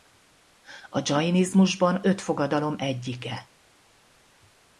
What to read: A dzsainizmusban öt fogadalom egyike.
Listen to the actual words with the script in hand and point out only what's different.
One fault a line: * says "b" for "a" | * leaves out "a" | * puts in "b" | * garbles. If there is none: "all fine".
all fine